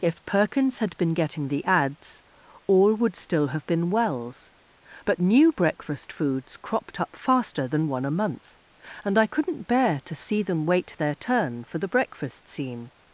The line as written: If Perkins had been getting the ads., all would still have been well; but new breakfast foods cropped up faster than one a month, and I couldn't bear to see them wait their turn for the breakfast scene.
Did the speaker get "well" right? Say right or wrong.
wrong